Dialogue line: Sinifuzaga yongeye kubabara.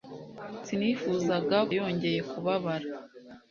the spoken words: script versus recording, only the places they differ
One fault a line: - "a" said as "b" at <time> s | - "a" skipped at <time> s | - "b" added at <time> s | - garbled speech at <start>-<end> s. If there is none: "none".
none